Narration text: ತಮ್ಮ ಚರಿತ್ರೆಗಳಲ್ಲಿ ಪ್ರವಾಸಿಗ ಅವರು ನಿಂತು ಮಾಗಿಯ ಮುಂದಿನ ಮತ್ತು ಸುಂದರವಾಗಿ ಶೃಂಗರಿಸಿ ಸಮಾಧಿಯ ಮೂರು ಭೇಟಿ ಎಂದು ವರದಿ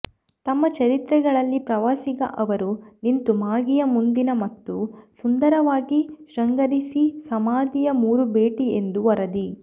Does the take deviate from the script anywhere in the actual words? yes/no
no